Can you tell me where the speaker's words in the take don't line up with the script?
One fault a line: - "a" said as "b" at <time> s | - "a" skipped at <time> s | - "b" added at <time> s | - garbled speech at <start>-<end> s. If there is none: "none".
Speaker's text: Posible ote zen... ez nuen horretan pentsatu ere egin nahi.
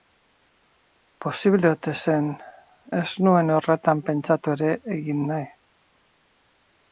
none